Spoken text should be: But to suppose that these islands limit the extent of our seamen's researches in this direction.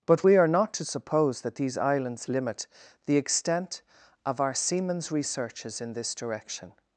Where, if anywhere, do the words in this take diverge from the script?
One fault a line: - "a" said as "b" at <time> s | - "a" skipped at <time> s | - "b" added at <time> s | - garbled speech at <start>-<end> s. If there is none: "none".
- "we are not" added at 0.2 s